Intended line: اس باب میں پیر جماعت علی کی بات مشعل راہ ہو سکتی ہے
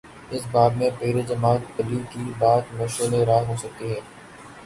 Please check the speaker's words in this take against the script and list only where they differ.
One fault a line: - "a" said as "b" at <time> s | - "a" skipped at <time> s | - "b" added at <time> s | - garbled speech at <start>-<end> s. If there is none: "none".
none